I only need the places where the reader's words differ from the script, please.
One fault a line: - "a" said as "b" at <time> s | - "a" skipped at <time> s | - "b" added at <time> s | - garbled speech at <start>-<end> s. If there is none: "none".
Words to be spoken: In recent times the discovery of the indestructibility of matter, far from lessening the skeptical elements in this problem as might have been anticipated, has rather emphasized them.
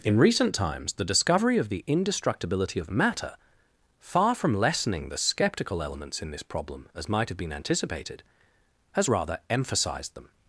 none